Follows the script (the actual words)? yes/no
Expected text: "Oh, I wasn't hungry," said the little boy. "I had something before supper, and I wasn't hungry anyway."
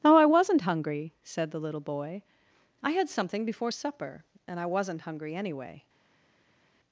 yes